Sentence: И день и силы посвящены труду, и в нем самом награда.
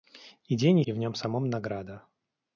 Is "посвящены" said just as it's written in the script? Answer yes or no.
no